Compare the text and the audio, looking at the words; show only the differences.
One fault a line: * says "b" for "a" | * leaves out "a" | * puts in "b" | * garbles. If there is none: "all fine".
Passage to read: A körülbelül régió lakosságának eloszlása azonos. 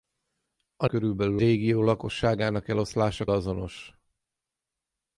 all fine